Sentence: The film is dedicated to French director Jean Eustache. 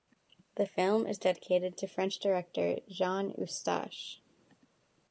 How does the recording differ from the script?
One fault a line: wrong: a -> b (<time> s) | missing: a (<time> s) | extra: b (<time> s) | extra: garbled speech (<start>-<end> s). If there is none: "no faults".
no faults